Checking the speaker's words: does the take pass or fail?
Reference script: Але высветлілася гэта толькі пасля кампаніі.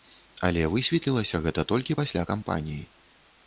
pass